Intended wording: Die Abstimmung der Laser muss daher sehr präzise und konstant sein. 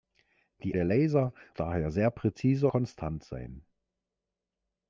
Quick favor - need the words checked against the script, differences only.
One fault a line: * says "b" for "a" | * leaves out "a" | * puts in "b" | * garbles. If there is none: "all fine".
* leaves out "Abstimmung"
* leaves out "muss"
* leaves out "und"